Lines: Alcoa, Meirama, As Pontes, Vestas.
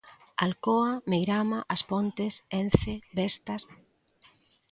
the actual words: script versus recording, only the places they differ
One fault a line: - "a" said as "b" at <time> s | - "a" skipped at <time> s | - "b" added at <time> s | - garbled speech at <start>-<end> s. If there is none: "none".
- "Ence" added at 2.6 s